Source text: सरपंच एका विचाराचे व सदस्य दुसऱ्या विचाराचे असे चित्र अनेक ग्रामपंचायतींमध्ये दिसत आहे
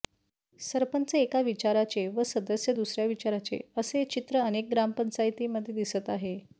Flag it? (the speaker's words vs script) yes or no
no